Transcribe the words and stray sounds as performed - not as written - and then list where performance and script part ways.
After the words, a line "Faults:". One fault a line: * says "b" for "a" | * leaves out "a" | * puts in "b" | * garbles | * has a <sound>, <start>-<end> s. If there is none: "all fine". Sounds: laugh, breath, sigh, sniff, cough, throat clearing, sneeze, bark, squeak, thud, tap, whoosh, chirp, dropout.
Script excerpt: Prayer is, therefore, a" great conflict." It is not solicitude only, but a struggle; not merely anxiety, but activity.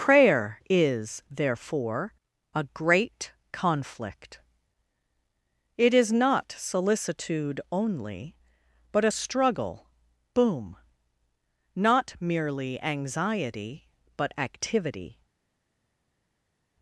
Prayer is, therefore, a" great conflict." It is not solicitude only, but a struggle; boom not merely anxiety, but activity.
Faults:
* puts in "boom"